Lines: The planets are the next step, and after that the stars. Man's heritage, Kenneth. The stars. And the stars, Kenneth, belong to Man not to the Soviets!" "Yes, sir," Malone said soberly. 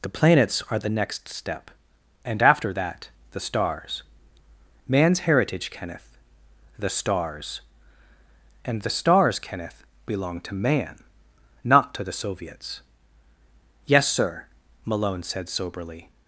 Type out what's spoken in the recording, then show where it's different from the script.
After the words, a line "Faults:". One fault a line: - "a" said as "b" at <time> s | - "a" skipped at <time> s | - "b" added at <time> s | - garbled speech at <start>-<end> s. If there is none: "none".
The planets are the next step, and after that the stars. Man's heritage, Kenneth. The stars. And the stars, Kenneth, belong to Man not to the Soviets!" "Yes, sir," Malone said soberly.
Faults:
none